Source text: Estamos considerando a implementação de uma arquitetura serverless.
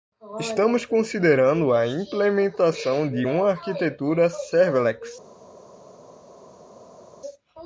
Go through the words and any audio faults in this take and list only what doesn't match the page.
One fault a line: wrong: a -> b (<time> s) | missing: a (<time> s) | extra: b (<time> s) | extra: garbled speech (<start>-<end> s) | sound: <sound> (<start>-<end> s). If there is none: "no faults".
no faults